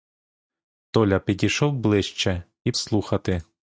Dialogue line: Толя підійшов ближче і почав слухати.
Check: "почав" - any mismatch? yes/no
yes